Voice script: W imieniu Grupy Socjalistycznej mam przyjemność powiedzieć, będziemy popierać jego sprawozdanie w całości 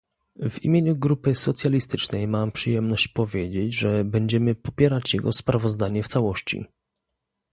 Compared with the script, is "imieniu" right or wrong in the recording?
right